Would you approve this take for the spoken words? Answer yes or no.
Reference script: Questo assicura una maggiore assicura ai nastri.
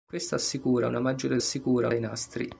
yes